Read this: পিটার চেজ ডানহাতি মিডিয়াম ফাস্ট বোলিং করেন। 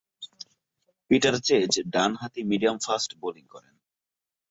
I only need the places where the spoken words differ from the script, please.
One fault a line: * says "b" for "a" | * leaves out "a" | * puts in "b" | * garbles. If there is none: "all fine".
all fine